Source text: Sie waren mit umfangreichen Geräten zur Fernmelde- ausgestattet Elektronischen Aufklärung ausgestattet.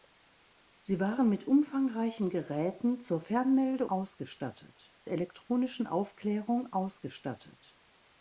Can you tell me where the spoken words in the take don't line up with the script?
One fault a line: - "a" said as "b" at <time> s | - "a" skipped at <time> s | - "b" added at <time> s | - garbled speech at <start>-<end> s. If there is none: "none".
none